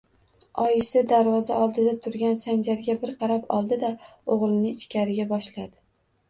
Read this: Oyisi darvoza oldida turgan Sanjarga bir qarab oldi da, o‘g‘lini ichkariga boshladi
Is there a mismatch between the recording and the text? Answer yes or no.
no